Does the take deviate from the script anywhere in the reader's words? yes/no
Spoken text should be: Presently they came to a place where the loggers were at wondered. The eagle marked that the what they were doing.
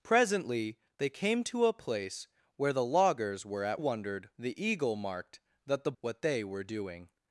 no